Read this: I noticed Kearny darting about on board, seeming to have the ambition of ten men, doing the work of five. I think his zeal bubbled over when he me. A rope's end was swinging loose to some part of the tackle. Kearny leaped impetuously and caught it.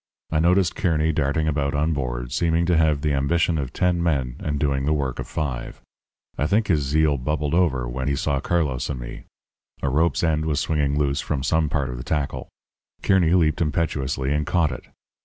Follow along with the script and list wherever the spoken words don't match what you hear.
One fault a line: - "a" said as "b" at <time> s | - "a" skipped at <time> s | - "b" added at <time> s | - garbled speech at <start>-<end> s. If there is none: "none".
- "and" added at 4.4 s
- "saw Carlos and" added at 8.1 s
- "to" said as "from" at 11.2 s